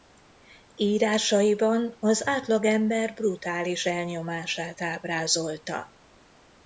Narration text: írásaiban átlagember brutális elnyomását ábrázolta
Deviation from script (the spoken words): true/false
true